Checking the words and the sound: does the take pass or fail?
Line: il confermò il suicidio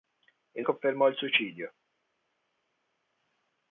pass